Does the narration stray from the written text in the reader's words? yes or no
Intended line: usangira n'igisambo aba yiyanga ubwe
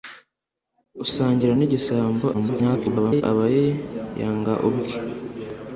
yes